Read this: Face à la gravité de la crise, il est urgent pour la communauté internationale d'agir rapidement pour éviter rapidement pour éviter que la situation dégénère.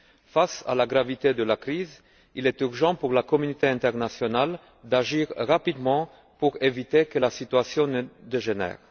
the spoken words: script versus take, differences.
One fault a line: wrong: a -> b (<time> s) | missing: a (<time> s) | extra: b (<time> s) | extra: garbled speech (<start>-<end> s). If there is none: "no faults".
missing: rapidement pour éviter (7.0 s)
extra: ne (7.9 s)